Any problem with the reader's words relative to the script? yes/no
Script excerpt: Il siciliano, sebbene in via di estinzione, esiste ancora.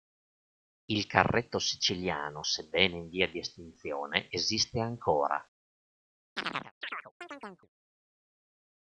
yes